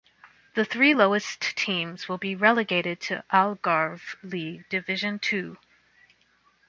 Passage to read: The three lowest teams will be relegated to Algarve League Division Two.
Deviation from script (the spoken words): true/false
false